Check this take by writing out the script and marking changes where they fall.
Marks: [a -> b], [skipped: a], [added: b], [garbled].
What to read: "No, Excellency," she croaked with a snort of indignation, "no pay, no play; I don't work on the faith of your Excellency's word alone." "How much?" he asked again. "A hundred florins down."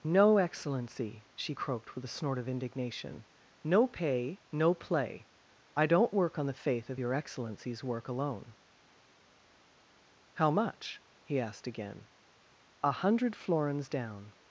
"No, Excellency," she croaked with a snort of indignation, "no pay, no play; I don't work on the faith of your Excellency's [word -> work] alone." "How much?" he asked again. "A hundred florins down."